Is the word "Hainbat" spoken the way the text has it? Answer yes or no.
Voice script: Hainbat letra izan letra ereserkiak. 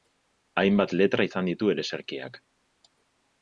yes